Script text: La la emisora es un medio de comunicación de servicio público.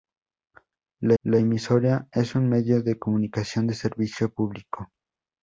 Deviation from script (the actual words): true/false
false